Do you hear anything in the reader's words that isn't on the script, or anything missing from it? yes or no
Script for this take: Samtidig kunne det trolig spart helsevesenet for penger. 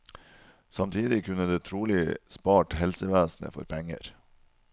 no